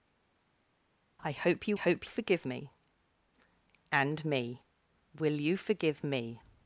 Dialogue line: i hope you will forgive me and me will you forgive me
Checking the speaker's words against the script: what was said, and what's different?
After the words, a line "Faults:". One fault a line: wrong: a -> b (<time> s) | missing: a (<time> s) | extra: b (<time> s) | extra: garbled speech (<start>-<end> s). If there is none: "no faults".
i hope you hope forgive me and me will you forgive me
Faults:
wrong: will -> hope (1.7 s)